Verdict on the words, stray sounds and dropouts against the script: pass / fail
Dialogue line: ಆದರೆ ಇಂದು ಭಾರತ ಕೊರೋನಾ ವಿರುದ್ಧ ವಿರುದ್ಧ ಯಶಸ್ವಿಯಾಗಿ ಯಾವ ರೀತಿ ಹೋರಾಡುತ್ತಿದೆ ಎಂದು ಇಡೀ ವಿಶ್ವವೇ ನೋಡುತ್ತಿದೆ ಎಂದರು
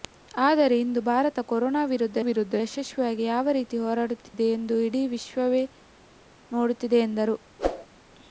fail